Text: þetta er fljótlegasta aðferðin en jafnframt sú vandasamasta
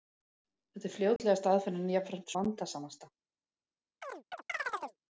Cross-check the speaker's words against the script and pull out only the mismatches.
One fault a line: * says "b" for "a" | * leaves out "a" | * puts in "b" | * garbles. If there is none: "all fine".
* leaves out "sú"